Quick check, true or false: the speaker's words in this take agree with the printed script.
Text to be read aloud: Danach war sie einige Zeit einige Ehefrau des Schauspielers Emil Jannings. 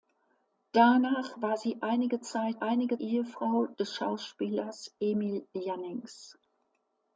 true